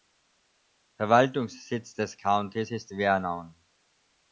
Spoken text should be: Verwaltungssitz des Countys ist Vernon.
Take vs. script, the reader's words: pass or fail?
pass